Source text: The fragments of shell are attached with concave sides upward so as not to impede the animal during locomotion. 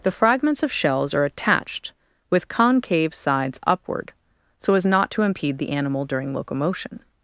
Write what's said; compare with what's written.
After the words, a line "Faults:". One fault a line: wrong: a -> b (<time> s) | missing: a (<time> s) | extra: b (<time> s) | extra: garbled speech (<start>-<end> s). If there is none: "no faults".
The fragments of shells are attached with concave sides upward so as not to impede the animal during locomotion.
Faults:
wrong: shell -> shells (0.7 s)